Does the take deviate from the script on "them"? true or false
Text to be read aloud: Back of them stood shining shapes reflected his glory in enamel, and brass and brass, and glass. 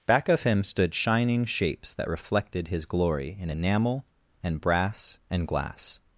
true